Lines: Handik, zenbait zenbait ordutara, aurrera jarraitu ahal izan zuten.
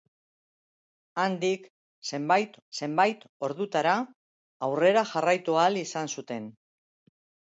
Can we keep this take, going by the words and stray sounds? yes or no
yes